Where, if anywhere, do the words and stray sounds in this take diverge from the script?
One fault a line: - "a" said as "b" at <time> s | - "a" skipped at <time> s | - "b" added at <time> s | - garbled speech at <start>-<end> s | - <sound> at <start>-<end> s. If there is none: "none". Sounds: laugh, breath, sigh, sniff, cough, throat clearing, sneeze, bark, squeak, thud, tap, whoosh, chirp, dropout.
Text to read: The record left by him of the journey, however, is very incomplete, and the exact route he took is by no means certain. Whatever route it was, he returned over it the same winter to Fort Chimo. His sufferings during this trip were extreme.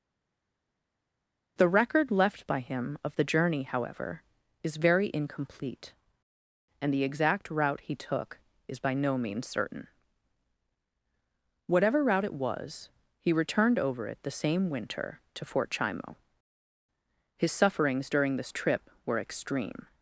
none